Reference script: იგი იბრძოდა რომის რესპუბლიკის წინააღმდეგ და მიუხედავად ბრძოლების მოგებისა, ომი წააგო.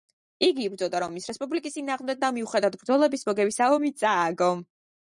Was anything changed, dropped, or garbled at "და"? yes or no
no